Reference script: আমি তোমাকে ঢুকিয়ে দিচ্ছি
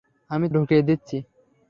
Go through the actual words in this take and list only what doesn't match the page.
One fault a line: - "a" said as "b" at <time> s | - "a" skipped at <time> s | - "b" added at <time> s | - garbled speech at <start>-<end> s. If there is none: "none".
- "তোমাকে" skipped at 0.5 s